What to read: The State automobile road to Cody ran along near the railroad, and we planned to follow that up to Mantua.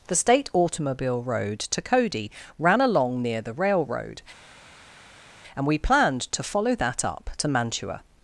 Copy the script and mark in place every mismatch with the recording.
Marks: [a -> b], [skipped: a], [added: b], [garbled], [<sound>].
The State automobile road to Cody ran along near the railroad, and we planned to follow that up to Mantua.